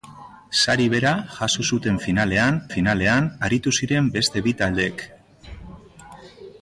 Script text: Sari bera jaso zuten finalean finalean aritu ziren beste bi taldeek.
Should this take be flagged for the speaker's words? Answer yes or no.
no